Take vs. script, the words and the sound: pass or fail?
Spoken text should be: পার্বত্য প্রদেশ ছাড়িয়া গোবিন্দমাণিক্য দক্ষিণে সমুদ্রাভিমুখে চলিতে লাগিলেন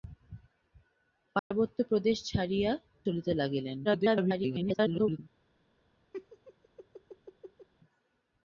fail